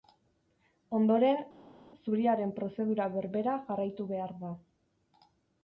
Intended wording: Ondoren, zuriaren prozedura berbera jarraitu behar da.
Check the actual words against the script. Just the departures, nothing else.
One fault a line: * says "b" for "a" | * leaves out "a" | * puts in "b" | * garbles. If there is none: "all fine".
all fine